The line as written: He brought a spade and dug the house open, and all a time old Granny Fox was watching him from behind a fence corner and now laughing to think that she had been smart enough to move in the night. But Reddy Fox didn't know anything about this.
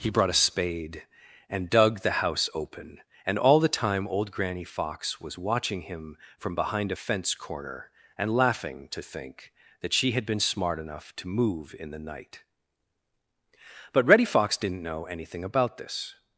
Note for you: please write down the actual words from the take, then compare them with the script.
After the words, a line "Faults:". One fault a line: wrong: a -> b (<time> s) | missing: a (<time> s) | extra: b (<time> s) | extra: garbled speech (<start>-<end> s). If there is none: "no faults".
He brought a spade and dug the house open, and all the time old Granny Fox was watching him from behind a fence corner and laughing to think that she had been smart enough to move in the night. But Reddy Fox didn't know anything about this.
Faults:
wrong: a -> the (3.6 s)
missing: now (8.4 s)